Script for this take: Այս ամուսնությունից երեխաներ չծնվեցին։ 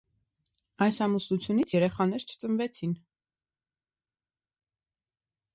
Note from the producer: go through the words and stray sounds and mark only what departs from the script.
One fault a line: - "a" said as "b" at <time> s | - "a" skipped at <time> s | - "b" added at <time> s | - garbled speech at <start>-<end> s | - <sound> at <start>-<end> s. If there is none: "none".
none